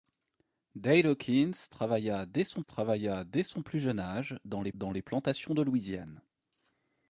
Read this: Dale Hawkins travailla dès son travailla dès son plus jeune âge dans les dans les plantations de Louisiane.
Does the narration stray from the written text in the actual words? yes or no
no